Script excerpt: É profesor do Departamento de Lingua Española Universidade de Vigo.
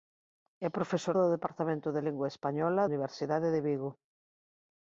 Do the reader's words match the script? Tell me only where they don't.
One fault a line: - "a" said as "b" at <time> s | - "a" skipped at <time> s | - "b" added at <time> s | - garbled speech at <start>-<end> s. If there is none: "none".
none